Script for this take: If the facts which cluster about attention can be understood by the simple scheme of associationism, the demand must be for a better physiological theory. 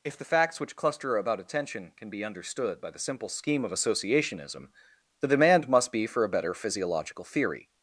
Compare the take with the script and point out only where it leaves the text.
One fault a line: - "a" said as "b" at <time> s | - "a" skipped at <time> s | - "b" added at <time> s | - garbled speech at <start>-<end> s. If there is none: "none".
none